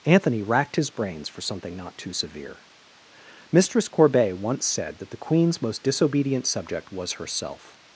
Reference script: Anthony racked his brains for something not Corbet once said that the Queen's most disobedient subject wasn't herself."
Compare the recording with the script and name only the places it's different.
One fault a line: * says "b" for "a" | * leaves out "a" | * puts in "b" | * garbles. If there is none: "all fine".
* puts in "too severe Mistress"
* says "was" for "wasn't"